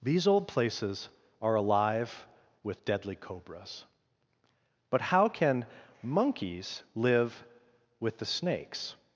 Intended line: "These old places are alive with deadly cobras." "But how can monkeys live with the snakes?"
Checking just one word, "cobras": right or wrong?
right